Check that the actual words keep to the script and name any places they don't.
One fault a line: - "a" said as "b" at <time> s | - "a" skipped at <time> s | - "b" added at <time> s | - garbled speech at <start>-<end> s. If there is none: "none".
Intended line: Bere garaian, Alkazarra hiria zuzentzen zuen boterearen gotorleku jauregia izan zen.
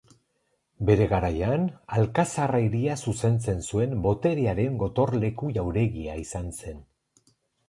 none